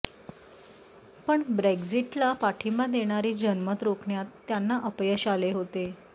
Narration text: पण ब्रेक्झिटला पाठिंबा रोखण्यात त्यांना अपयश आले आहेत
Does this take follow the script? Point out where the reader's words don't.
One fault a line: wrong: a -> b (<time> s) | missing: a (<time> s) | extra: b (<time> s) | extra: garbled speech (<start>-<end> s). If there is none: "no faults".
extra: देणारे जनमत (2.9 s)
wrong: आहेत -> होते (5.5 s)